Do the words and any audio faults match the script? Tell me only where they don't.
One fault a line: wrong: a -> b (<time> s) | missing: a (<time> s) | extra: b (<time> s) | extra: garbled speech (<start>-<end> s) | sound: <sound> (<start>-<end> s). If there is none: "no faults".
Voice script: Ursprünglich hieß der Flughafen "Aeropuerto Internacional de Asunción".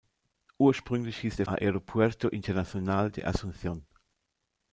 missing: Flughafen (1.5 s)